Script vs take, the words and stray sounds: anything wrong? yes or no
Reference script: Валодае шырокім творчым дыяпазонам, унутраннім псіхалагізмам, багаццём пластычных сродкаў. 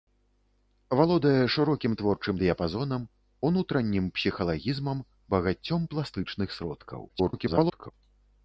yes